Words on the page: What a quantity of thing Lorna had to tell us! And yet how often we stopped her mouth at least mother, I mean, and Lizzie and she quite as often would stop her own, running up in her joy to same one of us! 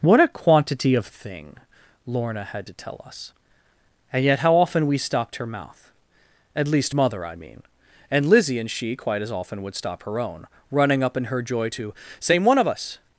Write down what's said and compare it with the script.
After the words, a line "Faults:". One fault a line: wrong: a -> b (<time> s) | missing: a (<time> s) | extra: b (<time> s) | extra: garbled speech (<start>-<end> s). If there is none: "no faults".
What a quantity of thing Lorna had to tell us! And yet how often we stopped her mouth at least mother, I mean, and Lizzie and she quite as often would stop her own, running up in her joy to same one of us!
Faults:
no faults